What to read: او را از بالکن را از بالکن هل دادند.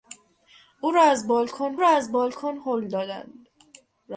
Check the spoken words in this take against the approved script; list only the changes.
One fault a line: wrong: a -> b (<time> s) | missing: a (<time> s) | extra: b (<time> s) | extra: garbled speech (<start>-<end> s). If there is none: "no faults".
no faults